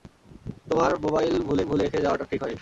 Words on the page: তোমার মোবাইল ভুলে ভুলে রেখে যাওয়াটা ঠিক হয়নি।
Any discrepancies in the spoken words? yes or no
no